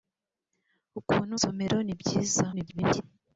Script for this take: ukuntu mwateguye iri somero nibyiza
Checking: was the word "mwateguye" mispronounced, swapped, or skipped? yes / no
yes